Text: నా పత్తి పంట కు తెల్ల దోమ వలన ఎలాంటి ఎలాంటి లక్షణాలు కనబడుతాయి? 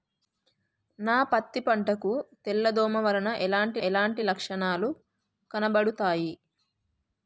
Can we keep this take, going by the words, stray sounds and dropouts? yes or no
yes